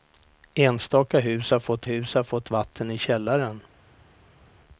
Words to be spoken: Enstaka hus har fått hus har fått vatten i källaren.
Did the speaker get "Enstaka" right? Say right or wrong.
right